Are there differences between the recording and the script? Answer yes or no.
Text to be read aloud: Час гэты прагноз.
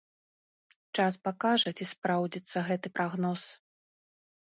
yes